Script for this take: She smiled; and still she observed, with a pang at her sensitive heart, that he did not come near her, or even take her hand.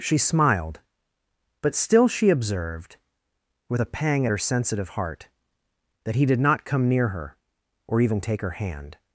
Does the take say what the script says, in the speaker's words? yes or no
no